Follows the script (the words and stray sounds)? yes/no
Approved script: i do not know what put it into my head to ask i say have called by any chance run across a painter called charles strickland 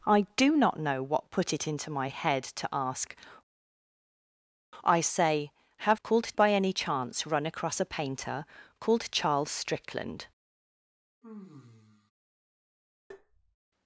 no